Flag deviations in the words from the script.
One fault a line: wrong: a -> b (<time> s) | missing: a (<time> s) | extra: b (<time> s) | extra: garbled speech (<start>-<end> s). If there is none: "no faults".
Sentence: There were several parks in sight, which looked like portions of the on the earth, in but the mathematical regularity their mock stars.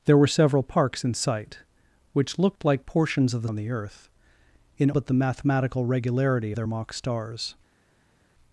no faults